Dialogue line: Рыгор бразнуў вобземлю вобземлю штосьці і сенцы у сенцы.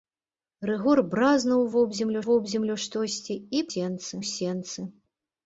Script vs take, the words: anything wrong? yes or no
no